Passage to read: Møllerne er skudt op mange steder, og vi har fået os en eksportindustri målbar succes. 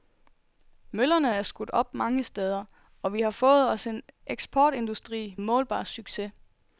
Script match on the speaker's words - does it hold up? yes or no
yes